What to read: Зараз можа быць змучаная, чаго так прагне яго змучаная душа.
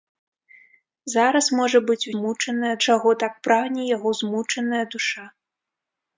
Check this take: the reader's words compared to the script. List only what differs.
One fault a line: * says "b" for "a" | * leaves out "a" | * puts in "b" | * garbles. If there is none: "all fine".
all fine